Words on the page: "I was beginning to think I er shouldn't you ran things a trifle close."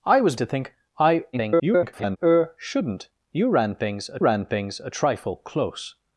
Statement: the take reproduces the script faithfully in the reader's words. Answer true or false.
false